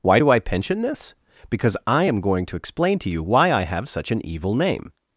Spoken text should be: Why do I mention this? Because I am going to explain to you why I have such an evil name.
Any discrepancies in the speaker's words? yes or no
yes